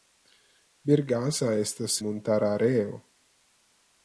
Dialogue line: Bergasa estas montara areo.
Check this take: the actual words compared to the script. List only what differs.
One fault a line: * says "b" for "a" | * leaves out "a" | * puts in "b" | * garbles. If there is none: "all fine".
all fine